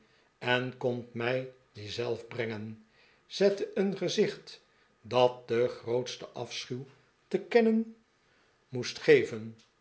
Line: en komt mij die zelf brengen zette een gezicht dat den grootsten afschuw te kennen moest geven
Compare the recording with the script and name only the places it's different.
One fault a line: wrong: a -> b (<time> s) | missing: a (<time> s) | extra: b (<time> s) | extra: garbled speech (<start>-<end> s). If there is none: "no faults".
no faults